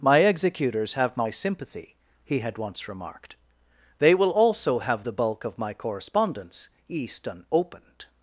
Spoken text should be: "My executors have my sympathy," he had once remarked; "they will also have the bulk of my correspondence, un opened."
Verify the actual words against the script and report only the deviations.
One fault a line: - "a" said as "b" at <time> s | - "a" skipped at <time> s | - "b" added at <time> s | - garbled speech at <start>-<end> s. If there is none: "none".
- "un" said as "east and" at 6.9 s